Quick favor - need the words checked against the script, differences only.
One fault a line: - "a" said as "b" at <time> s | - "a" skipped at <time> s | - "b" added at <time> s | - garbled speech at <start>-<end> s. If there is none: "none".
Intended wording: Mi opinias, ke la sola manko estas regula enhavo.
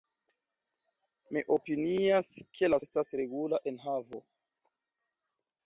- "sola manko" skipped at 2.8 s